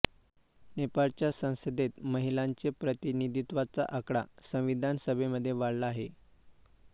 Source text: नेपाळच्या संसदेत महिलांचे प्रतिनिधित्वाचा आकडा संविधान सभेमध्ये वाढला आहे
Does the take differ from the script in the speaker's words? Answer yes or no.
no